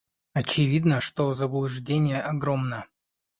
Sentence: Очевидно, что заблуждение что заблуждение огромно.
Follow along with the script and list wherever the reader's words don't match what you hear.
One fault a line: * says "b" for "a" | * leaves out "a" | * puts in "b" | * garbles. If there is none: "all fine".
* leaves out "что заблуждение"